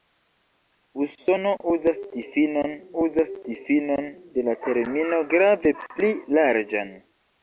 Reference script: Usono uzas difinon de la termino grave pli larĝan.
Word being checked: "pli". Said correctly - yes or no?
yes